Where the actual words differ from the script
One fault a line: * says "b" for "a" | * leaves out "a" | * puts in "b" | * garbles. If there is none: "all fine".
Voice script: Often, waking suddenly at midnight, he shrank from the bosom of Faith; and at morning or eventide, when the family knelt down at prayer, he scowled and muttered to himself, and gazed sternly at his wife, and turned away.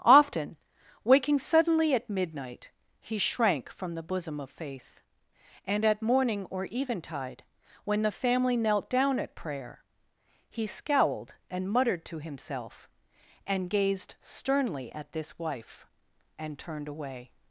* says "this" for "his"